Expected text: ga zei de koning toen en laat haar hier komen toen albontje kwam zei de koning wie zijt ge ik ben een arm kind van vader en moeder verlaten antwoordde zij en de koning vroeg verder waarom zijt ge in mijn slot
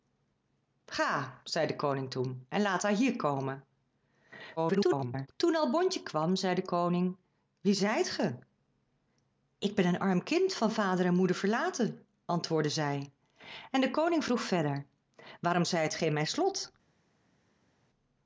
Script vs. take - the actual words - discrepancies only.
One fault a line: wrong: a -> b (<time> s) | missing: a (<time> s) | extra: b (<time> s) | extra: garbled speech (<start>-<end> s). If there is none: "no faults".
extra: garbled speech (4.6-5.3 s)